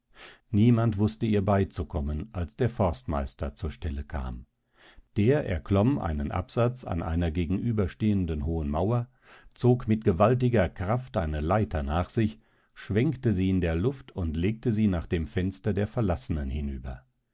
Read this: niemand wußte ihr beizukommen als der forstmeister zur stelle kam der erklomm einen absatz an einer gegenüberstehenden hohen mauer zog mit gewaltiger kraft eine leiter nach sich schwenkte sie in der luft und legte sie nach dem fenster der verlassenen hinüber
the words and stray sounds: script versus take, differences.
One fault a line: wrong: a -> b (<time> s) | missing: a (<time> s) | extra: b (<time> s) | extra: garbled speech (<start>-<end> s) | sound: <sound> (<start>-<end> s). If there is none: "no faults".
no faults